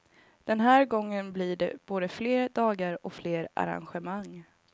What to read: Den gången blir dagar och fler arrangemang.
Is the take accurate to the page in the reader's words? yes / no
no